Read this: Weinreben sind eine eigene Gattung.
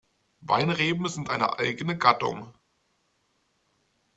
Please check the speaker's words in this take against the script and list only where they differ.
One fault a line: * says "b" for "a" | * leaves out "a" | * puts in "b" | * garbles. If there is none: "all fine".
all fine